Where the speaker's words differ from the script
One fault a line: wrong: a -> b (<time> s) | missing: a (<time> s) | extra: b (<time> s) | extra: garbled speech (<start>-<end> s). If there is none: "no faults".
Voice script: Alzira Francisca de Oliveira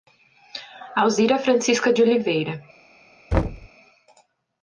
no faults